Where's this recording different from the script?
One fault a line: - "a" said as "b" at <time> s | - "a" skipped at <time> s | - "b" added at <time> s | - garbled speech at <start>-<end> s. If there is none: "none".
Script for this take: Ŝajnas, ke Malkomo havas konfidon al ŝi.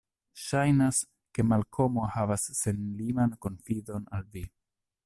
- "senliman" added at 2.6 s
- "ŝi" said as "vi" at 4.4 s